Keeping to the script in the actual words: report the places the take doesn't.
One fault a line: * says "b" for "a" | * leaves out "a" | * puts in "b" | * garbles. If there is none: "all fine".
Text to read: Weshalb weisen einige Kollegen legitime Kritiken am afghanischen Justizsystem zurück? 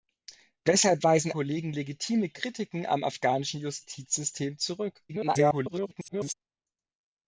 * leaves out "einige"
* garbles